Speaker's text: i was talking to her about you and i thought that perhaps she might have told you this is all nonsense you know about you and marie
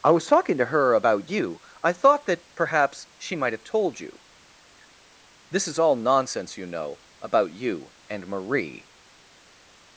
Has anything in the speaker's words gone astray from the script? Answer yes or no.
yes